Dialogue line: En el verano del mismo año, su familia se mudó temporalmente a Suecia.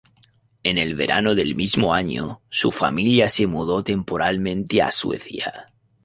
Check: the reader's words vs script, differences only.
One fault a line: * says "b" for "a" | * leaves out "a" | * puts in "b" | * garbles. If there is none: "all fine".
all fine